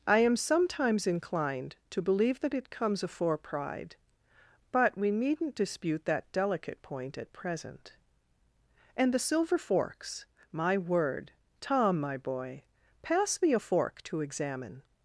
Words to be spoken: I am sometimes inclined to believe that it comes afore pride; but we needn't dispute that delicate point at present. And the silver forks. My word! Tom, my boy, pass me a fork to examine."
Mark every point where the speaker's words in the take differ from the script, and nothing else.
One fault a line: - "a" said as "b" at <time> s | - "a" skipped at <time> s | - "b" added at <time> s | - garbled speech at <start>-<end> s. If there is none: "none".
none